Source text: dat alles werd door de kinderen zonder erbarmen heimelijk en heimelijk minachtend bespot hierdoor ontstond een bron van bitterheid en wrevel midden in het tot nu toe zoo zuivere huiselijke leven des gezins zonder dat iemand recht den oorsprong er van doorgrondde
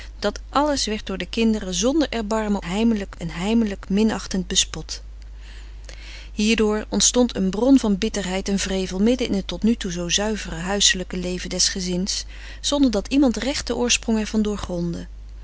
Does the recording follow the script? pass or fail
pass